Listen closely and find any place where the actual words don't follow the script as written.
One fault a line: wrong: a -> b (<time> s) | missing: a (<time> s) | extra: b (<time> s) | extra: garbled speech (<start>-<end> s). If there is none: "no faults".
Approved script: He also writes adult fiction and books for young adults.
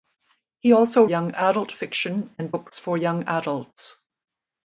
wrong: writes -> young (1.0 s)